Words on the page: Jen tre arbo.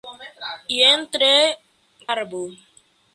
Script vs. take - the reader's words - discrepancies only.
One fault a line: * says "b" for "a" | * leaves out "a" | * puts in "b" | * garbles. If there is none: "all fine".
all fine